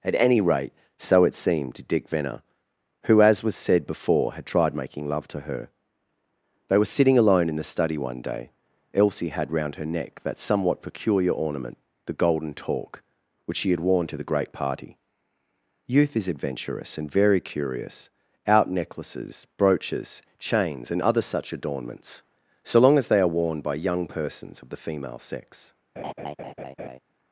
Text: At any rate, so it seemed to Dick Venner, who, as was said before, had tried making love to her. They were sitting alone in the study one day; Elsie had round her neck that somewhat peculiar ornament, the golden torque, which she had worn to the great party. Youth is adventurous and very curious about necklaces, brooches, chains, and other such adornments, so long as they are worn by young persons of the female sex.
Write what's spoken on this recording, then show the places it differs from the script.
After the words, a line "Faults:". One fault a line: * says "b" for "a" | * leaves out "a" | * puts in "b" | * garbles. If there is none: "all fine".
At any rate, so it seemed to Dick Venner, who, as was said before, had tried making love to her. They were sitting alone in the study one day; Elsie had round her neck that somewhat peculiar ornament, the golden torque, which she had worn to the great party. Youth is adventurous and very curious out necklaces, brooches, chains, and other such adornments, so long as they are worn by young persons of the female sex.
Faults:
* says "out" for "about"